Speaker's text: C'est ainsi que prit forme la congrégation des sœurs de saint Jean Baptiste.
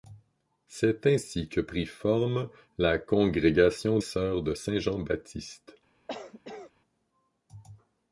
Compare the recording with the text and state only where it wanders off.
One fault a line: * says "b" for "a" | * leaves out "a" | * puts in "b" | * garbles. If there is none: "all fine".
* leaves out "des"